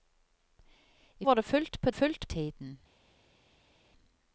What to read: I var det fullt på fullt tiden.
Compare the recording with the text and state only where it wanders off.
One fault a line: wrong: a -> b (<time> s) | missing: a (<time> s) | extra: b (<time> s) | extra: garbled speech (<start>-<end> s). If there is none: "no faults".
no faults